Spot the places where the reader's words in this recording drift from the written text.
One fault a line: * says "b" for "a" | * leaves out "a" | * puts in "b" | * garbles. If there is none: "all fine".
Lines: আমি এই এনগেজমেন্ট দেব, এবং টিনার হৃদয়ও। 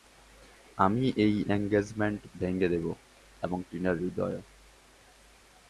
* puts in "ভেঙে"